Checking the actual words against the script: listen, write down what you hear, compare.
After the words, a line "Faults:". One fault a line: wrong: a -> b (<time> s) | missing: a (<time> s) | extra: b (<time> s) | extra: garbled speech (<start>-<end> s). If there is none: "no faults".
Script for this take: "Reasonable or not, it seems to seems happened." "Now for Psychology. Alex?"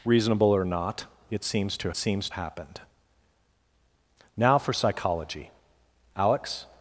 "Reasonable or not, it seems to seems happened." "Now for Psychology. Alex?"
Faults:
no faults